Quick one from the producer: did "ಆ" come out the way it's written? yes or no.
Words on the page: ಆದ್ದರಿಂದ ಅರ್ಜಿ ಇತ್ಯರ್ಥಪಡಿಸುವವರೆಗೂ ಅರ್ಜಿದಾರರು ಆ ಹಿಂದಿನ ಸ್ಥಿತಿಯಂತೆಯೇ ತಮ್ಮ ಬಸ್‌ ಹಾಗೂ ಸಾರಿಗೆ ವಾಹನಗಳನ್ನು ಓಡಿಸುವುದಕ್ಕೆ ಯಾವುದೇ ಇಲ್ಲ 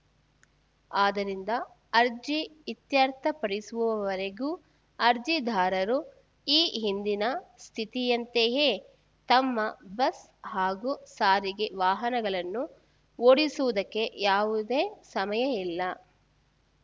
no